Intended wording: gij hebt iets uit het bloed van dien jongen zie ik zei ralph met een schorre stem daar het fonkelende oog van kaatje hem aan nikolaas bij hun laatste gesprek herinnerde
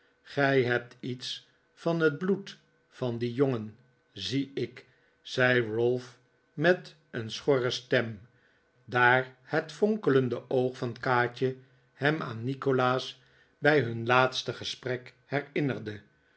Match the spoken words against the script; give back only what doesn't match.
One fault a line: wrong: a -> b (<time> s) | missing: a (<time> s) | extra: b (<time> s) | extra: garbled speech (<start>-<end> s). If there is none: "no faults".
wrong: uit -> van (1.7 s)